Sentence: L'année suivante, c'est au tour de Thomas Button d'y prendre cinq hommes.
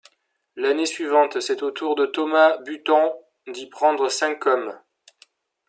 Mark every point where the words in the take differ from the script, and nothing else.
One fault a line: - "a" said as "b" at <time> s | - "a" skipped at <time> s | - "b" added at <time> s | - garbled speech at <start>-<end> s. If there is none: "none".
none